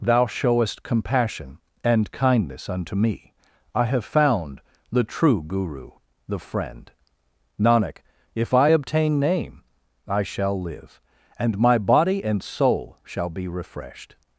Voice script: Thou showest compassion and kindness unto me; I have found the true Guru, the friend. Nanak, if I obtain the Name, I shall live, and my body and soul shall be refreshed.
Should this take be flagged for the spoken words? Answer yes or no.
yes